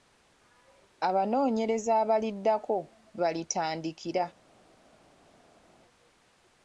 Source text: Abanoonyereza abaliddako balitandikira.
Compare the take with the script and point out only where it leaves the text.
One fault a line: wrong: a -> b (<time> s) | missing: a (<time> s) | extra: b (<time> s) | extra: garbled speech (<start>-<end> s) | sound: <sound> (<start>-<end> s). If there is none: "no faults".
no faults